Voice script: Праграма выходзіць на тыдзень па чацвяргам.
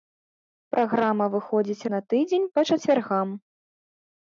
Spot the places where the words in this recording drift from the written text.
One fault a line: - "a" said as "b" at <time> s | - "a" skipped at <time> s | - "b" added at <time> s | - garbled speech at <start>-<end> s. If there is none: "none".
none